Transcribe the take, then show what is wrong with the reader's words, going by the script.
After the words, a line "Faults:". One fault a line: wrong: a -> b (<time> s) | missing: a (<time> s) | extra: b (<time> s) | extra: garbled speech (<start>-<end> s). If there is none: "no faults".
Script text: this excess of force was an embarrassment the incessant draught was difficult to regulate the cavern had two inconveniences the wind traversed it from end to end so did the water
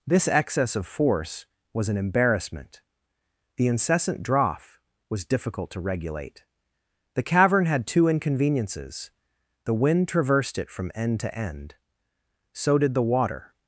this excess of force was an embarrassment the incessant draught was difficult to regulate the cavern had two inconveniences the wind traversed it from end to end so did the water
Faults:
no faults